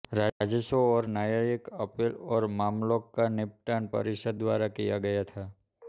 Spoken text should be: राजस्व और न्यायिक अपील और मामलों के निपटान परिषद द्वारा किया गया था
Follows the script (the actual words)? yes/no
no